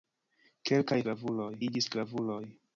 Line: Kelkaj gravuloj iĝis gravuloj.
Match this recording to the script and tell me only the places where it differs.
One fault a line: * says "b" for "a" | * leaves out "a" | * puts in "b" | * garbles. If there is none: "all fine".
all fine